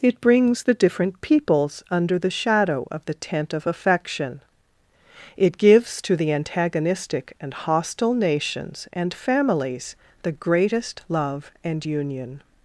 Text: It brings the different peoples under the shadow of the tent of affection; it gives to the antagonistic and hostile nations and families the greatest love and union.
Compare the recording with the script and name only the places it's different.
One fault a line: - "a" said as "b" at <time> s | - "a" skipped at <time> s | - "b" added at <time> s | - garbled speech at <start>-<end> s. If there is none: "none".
none